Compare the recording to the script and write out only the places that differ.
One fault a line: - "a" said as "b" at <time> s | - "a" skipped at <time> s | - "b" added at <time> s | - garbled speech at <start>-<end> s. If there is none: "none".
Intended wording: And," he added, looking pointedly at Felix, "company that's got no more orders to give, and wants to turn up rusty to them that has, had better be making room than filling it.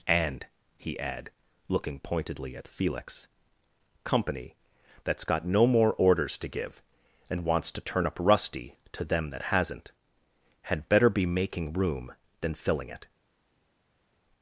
- "added" said as "add" at 1.0 s
- "has" said as "hasn't" at 9.4 s